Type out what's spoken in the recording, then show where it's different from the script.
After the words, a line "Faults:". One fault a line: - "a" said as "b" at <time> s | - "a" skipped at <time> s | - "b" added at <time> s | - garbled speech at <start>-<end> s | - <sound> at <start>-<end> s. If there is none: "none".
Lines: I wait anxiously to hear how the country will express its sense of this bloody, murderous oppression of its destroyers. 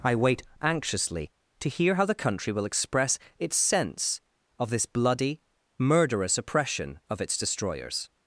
I wait anxiously to hear how the country will express its sense of this bloody, murderous oppression of its destroyers.
Faults:
none